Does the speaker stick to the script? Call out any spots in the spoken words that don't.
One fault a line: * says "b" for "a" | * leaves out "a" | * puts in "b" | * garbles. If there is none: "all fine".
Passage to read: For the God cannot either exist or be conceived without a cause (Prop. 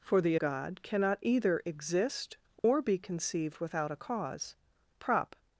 all fine